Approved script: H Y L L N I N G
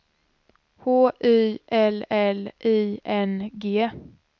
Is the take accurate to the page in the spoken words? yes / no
no